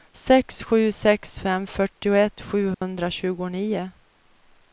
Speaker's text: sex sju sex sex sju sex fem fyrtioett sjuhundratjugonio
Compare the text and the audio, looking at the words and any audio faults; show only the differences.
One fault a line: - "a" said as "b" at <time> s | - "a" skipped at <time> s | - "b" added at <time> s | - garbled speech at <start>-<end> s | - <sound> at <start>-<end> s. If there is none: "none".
- "sex sju sex" skipped at 1.4 s
- dropout at 2.7-2.8 s